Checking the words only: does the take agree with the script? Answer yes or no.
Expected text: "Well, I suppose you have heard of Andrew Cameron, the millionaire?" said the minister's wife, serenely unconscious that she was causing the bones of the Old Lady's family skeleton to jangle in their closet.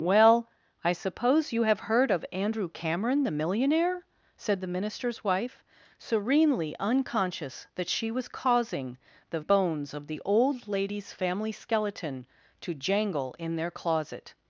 yes